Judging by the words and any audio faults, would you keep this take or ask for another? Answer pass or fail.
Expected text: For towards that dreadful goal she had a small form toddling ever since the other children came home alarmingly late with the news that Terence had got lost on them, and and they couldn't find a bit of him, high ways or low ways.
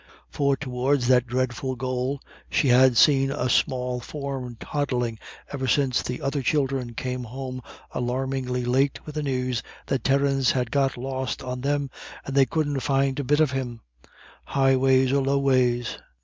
fail